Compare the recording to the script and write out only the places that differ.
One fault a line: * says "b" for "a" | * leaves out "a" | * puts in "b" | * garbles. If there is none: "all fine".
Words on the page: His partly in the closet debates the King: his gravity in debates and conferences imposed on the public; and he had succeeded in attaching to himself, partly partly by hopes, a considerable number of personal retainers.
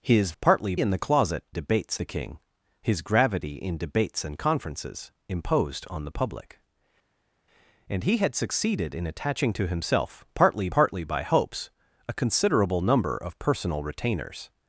all fine